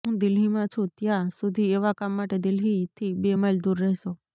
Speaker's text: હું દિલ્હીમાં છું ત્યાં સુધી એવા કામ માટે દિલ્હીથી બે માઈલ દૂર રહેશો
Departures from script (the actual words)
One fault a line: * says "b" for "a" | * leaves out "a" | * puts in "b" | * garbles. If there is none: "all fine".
all fine